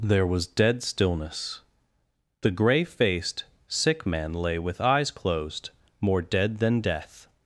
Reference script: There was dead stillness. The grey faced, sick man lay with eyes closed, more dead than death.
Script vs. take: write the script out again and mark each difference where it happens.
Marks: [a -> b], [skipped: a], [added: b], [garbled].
There was dead stillness. The grey faced, sick man lay with eyes closed, more dead than death.